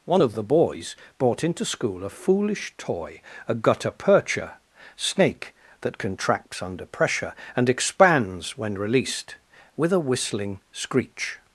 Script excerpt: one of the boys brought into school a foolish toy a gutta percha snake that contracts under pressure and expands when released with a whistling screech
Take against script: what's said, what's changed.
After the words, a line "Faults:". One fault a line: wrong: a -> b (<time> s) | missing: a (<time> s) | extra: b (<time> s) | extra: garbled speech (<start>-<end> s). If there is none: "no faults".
one of the boys brought into school a foolish toy a gutta percha snake that contracts under pressure and expands when released with a whistling screech
Faults:
no faults